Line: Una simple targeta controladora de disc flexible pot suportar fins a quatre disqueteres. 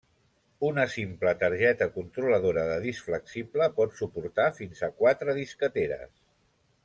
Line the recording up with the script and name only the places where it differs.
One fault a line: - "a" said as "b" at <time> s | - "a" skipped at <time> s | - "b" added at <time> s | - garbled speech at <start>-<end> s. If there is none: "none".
none